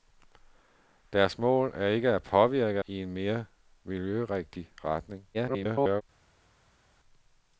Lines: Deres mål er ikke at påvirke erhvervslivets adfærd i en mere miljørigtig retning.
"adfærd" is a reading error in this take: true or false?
true